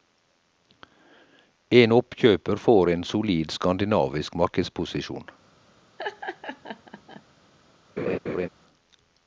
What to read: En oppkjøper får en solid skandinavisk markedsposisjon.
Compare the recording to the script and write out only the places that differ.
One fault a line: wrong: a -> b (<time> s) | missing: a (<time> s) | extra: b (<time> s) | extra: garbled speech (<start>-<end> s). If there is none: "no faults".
no faults